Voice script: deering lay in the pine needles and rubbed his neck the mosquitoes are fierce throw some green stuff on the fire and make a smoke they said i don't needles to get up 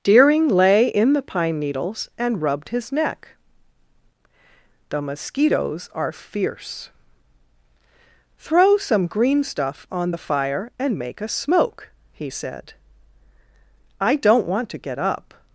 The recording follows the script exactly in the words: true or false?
false